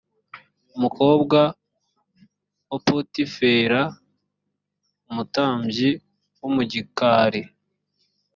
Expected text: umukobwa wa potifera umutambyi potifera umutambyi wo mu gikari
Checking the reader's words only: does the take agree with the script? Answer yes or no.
no